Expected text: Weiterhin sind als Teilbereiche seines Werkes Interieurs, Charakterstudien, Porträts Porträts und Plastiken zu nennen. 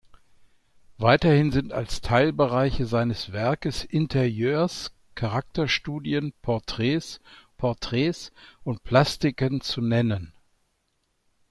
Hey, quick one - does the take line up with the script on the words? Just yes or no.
yes